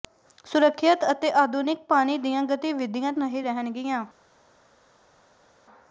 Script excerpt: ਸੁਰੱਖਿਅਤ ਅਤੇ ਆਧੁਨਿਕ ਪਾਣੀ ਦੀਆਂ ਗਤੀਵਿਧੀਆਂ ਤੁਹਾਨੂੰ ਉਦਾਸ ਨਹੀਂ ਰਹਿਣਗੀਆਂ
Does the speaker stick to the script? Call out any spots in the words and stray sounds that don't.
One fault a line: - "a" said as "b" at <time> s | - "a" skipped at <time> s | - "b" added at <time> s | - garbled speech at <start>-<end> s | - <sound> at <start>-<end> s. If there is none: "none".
- "ਤੁਹਾਨੂੰ ਉਦਾਸ" skipped at 3.1 s